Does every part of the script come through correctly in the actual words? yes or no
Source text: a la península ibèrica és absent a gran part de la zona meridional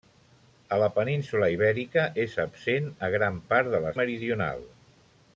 no